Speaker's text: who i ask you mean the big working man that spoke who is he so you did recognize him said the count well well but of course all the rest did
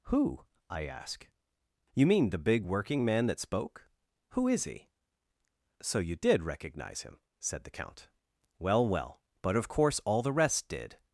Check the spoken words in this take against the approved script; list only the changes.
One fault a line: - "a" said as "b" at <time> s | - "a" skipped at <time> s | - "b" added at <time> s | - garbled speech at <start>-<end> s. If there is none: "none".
none